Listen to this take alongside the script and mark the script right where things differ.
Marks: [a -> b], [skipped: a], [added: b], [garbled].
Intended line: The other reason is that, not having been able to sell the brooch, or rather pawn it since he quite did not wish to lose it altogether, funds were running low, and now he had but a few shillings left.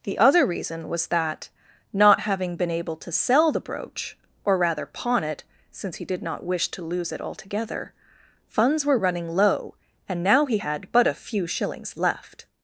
The other reason [is -> was] that, not having been able to sell the brooch, or rather pawn it since he [skipped: quite] did not wish to lose it altogether, funds were running low, and now he had but a few shillings left.